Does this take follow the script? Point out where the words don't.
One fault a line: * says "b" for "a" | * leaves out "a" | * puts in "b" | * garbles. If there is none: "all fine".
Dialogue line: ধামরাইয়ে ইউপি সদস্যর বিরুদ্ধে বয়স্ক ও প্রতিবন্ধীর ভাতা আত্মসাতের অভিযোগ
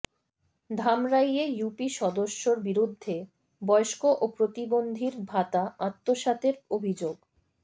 all fine